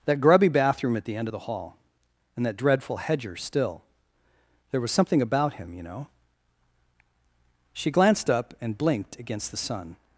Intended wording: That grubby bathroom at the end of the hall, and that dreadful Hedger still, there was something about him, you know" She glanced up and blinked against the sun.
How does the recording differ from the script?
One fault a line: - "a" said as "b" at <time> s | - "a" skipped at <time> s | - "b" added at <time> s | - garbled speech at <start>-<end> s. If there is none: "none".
none